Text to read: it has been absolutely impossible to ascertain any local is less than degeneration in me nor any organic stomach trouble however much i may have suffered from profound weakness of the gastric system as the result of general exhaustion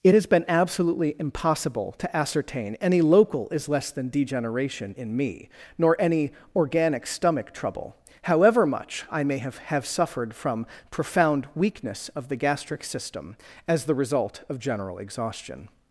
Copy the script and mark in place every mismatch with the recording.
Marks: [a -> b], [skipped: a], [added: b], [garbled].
it has been absolutely impossible to ascertain any local is less than degeneration in me nor any organic stomach trouble however much i may have [added: have] suffered from profound weakness of the gastric system as the result of general exhaustion